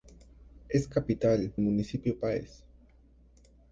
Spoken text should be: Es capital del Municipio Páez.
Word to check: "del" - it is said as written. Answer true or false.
false